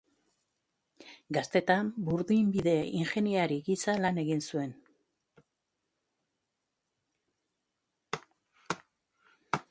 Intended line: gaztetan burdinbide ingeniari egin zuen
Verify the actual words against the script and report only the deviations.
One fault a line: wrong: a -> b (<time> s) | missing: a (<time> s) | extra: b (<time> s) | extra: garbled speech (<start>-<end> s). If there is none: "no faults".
extra: gisa lan (3.7 s)